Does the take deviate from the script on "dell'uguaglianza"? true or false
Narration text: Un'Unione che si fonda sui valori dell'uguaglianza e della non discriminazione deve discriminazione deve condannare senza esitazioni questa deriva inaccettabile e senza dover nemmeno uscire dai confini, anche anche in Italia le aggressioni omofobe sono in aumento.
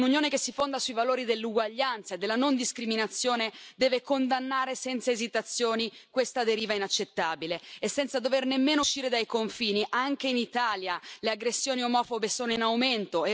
false